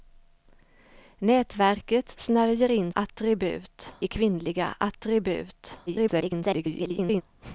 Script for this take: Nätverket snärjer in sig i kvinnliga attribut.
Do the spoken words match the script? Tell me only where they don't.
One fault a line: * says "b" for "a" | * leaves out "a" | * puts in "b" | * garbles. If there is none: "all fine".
* says "attribut" for "sig"
* garbles